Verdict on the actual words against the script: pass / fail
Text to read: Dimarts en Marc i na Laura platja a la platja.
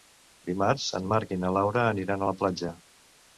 fail